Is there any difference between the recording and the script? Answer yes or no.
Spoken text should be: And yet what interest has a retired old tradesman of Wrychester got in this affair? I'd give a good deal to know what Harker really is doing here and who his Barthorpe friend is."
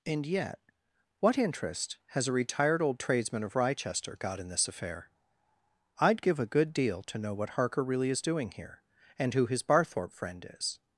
no